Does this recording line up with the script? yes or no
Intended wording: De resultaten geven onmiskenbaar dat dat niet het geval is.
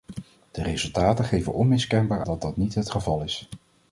yes